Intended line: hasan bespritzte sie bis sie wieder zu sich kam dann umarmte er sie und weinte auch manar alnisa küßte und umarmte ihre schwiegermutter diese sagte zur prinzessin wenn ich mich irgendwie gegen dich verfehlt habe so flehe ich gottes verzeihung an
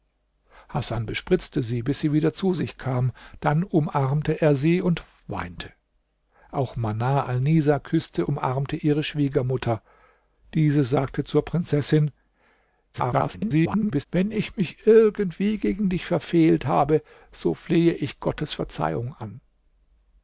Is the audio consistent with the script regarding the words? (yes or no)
no